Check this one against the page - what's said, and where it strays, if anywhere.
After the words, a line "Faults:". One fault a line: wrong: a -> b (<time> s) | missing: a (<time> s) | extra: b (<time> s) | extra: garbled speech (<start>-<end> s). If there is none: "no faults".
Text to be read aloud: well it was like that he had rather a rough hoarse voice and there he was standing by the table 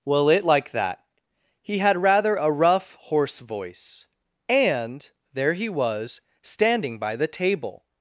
well it like that he had rather a rough hoarse voice and there he was standing by the table
Faults:
missing: was (0.5 s)